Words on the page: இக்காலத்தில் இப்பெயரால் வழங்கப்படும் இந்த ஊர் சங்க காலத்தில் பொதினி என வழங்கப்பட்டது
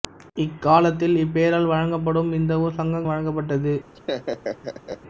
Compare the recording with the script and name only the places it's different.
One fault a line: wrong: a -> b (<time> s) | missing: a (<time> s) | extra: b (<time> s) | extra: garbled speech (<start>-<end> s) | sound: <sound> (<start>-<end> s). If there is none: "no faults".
missing: காலத்தில் பொதினி என (3.0 s)
sound: laugh (3.9-5.0 s)